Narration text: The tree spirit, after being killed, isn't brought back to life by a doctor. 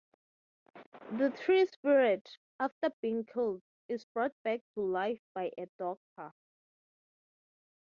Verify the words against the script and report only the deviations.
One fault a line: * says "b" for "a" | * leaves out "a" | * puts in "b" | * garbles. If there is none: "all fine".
* says "is" for "isn't"